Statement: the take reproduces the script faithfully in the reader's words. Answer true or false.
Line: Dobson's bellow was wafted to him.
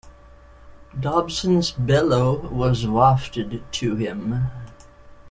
true